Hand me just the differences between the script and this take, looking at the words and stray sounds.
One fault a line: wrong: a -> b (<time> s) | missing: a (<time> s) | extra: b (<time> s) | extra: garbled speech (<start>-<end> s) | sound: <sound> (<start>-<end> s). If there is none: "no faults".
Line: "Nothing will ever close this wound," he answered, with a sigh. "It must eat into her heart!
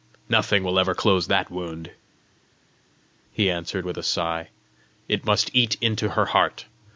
wrong: this -> that (1.3 s)